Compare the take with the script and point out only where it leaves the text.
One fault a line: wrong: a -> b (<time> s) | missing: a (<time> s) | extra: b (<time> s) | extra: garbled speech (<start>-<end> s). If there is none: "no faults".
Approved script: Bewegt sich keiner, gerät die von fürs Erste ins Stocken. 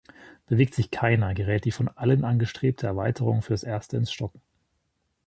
extra: allen angestrebte Erweiterung (1.9 s)